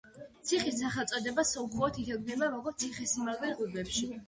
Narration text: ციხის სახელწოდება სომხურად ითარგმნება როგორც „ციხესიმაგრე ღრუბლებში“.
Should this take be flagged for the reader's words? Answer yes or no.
no